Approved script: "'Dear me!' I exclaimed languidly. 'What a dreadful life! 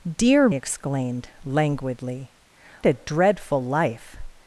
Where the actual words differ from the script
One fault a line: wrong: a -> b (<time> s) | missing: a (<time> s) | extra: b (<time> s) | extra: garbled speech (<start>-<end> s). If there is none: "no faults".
missing: me I (0.5 s)
missing: What (2.3 s)